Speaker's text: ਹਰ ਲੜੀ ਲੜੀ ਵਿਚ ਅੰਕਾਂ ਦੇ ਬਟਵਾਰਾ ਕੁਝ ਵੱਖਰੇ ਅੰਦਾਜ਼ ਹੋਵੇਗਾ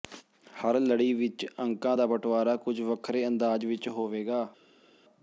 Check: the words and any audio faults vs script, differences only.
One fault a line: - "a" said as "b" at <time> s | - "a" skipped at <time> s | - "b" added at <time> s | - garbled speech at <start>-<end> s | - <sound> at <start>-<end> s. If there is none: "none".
- "ਲੜੀ" skipped at 1.1 s
- "ਦੇ" said as "ਦਾ" at 1.9 s
- "ਵਿਚ" added at 3.7 s